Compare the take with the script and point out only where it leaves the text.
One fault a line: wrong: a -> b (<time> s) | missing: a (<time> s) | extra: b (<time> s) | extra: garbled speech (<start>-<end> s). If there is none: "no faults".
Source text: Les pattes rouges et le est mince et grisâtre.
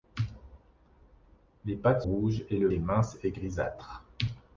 no faults